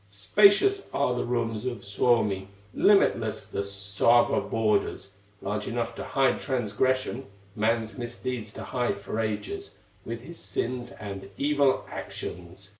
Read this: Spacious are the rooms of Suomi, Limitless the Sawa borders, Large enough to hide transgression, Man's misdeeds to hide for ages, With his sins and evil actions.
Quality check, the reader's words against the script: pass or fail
pass